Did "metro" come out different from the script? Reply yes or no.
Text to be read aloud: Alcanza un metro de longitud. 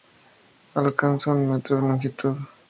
no